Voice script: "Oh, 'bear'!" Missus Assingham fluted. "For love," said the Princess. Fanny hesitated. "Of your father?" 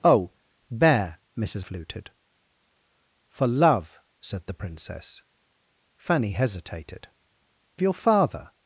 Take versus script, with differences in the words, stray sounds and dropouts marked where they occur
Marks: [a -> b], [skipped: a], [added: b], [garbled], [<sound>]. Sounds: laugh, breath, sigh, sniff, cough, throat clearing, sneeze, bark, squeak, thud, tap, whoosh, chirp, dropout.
"Oh, 'bear'!" Missus [skipped: Assingham] fluted. "For love," said the Princess. Fanny hesitated. [skipped: "Of] your father?"